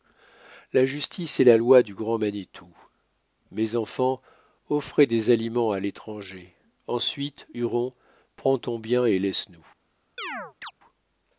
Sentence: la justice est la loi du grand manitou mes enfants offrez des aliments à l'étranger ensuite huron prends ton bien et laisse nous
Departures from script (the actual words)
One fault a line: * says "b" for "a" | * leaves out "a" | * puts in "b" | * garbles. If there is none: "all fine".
all fine